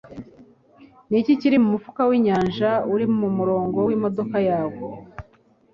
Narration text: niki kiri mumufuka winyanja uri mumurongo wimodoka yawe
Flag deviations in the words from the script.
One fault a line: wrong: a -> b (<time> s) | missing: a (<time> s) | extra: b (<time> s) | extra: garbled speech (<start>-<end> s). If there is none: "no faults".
no faults